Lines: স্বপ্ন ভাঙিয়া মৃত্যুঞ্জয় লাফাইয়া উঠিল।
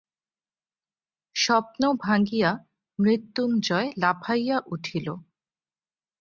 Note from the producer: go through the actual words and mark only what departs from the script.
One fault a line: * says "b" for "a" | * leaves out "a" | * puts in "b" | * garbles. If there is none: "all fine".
all fine